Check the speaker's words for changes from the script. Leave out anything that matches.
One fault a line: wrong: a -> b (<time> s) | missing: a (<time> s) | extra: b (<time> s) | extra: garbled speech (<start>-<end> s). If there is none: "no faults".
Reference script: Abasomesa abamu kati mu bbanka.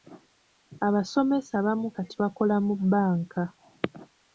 extra: bakola (2.2 s)